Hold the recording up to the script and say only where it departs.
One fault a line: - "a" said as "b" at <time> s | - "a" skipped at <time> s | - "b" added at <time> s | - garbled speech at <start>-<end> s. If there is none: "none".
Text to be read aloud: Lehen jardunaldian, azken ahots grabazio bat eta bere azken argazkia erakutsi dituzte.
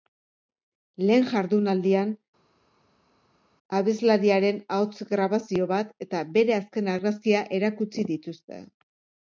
- "azken" said as "abeslariaren" at 3.8 s